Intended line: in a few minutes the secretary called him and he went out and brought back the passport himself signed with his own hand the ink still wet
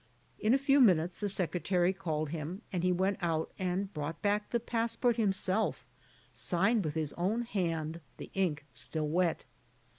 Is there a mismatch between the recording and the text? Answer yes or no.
no